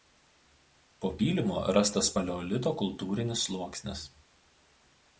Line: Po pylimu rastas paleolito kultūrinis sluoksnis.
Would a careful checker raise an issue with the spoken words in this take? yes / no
no